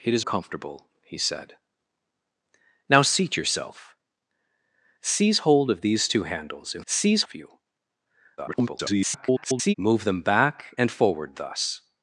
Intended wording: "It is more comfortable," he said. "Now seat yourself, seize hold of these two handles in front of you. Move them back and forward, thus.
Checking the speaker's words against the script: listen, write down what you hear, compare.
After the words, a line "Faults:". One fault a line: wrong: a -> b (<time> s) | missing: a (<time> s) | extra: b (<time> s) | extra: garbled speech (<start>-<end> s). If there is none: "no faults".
"It is comfortable," he said. "Now seat yourself, seize hold of these two handles in seize of you. [garbled] Move them back and forward, thus.
Faults:
missing: more (0.2 s)
wrong: front -> seize (6.9 s)
extra: garbled speech (8.4-9.7 s)